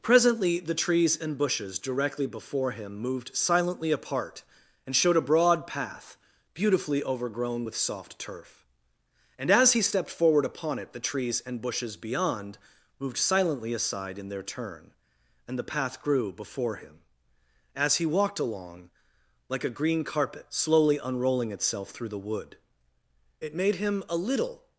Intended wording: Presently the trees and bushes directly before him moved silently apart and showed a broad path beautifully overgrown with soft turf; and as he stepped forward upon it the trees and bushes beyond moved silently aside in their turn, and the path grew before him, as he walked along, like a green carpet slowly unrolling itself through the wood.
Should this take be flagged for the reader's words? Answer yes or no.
yes